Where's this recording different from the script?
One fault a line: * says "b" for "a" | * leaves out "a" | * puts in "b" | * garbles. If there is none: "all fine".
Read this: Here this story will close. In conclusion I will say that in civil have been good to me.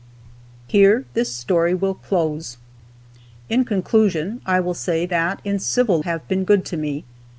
all fine